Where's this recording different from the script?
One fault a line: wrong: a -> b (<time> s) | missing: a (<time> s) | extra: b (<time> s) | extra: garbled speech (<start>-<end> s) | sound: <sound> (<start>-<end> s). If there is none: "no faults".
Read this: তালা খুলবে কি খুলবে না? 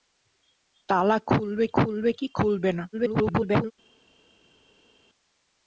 extra: খুলবে (1.8 s)
extra: garbled speech (2.9-3.7 s)